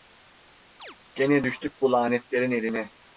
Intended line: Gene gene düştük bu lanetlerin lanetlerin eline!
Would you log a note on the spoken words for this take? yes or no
yes